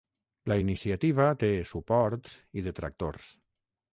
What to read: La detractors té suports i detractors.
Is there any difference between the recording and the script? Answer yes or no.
yes